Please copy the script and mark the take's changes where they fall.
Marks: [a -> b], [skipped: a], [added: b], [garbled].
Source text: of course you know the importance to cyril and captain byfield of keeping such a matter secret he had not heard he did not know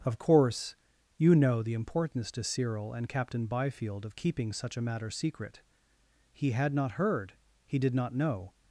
of course you know the importance to cyril and captain byfield of keeping such a matter secret he had not heard he did not know